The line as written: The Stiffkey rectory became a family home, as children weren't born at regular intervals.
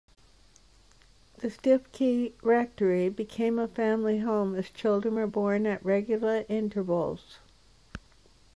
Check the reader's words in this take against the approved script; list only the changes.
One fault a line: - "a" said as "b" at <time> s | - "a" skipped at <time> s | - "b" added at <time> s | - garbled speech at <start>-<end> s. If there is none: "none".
- "weren't" said as "were" at 5.1 s